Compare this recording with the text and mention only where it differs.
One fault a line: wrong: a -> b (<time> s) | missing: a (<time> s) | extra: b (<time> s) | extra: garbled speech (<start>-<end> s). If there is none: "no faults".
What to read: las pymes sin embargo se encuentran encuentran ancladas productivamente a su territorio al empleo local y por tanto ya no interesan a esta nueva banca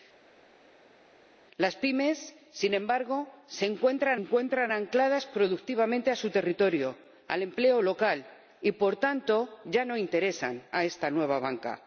no faults